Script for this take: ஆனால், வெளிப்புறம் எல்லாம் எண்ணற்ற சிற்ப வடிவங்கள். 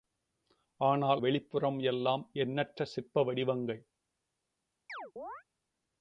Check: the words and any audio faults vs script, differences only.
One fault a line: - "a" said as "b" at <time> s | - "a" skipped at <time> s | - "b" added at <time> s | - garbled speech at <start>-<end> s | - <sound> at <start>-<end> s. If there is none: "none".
- chirp at 4.9-5.4 s